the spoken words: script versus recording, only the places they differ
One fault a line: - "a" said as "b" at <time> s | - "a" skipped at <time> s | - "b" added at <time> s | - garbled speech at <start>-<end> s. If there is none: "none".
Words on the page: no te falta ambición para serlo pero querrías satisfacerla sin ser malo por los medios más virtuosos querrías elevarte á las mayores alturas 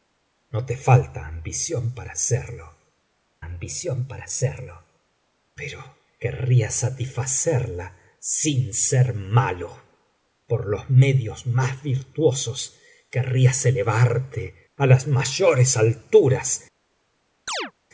- "ambición para serlo" added at 3.4 s